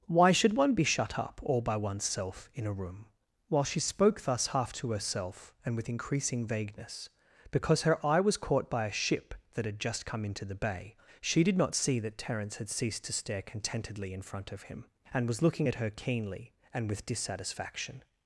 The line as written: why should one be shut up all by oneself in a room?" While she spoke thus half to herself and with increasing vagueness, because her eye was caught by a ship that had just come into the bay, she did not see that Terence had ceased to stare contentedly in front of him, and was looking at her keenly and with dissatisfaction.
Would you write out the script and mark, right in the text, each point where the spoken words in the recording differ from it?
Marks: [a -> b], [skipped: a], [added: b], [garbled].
why should one be shut up all by oneself in a room?" While she spoke thus half to herself and with increasing vagueness, because her eye was caught by a ship that had just come into the bay, she did not see that Terence had ceased to stare contentedly in front of him, and was looking at her keenly and with dissatisfaction.